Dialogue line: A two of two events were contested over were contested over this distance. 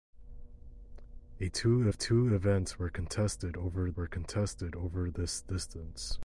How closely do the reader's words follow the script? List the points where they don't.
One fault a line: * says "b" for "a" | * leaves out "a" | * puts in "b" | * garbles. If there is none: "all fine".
all fine